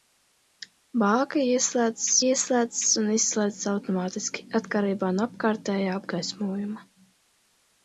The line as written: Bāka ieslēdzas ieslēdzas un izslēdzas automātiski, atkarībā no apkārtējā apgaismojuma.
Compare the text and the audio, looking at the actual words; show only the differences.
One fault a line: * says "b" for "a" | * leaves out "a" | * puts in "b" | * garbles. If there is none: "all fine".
all fine